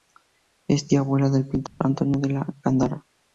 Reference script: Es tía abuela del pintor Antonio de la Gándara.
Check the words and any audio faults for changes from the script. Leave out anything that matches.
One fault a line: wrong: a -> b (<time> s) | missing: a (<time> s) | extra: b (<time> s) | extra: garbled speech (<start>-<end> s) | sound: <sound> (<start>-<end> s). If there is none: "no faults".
sound: dropout (1.7-1.8 s)